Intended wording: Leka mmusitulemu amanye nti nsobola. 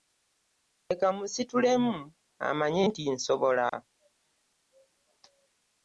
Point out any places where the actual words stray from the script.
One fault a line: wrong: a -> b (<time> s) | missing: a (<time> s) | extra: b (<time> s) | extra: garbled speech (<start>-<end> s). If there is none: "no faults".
no faults